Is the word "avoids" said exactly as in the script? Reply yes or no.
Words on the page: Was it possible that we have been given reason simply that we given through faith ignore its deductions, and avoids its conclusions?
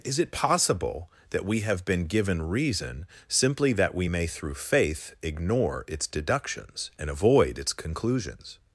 no